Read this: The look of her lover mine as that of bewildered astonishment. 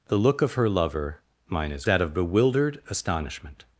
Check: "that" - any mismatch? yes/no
no